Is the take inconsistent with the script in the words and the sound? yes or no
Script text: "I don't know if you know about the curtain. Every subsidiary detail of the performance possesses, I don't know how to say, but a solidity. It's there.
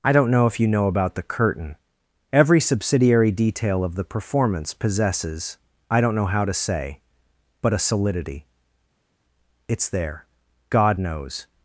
yes